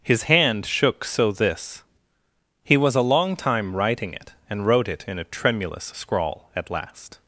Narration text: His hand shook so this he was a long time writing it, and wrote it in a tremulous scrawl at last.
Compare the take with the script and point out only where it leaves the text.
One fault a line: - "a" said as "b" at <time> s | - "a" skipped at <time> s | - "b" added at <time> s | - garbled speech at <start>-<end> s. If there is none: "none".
none